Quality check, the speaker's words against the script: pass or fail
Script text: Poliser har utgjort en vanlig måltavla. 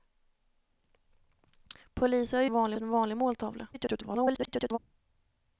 fail